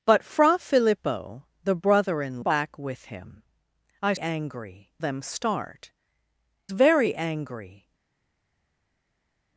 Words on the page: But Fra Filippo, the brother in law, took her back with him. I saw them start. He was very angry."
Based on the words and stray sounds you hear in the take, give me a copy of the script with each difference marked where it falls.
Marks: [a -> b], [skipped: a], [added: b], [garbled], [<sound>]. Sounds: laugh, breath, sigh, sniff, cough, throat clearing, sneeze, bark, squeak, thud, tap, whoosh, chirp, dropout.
But Fra Filippo, the brother in [skipped: law, took her] back with him. I [saw -> angry] them start. [skipped: He was] very angry."